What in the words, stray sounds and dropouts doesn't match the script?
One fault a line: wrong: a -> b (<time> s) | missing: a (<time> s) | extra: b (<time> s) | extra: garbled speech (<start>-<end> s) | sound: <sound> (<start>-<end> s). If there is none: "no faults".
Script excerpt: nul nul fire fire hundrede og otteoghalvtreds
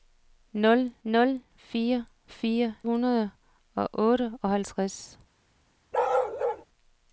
sound: bark (5.9-6.6 s)